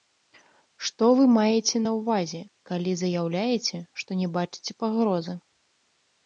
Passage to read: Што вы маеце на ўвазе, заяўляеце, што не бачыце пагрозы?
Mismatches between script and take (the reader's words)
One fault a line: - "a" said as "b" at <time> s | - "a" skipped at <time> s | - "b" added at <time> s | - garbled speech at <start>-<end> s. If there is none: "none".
- "калі" added at 2.7 s